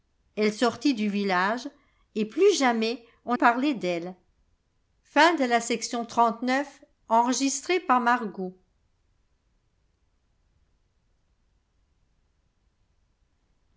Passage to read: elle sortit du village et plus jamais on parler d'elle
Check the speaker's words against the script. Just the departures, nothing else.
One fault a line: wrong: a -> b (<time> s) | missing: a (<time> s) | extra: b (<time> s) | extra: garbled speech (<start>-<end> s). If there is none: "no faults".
no faults